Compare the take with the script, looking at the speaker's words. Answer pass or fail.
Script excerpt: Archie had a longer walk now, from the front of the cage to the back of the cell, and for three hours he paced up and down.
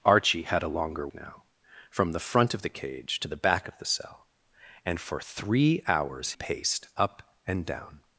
fail